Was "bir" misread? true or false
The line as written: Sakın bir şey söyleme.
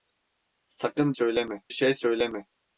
true